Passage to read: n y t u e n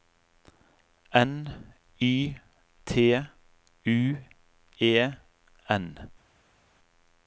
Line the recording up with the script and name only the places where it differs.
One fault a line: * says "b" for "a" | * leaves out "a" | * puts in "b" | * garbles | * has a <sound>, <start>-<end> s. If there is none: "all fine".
all fine